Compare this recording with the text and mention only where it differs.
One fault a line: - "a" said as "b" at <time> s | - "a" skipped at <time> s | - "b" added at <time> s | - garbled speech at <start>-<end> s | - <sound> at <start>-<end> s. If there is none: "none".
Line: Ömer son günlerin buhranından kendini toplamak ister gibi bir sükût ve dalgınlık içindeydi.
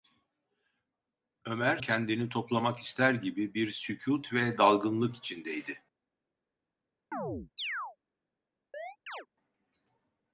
- "son günlerin buhranından" skipped at 1.8 s
- chirp at 7.1-8.0 s
- chirp at 8.7-9.3 s